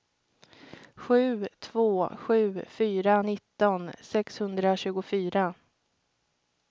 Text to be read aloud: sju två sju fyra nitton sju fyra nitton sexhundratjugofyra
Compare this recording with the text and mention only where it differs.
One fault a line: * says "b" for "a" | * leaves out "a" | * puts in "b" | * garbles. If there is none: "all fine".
* leaves out "sju fyra nitton"